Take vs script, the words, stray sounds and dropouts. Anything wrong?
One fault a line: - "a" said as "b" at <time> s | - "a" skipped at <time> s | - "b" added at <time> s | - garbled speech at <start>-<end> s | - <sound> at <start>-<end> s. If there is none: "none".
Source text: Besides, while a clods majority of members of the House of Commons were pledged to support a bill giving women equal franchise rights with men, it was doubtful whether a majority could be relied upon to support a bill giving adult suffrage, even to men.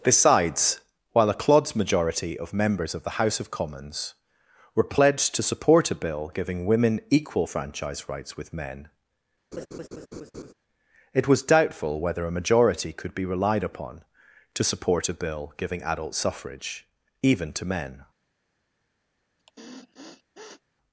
- laugh at 9.5-10.5 s
- sniff at 19.4-20.6 s